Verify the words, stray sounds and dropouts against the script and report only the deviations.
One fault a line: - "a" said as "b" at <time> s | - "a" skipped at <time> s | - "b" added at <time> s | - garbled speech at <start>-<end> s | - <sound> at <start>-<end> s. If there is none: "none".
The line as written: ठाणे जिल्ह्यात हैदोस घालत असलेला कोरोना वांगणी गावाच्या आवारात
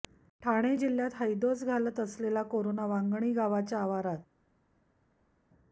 none